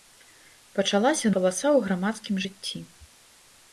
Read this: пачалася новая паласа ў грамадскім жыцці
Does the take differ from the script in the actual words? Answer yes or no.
yes